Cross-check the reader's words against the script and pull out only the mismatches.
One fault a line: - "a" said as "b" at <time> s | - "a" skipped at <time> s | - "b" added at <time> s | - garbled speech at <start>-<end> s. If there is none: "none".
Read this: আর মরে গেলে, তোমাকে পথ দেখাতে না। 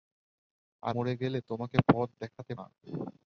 none